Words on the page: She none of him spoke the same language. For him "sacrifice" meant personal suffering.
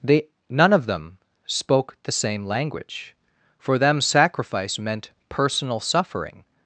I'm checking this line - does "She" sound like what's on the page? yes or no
no